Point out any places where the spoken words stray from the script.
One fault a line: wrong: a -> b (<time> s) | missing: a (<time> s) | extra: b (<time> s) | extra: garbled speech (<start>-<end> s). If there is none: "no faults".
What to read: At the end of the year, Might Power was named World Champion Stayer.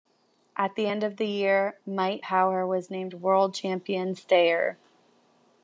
no faults